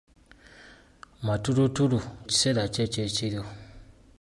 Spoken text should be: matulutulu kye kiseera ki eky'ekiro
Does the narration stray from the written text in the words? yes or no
yes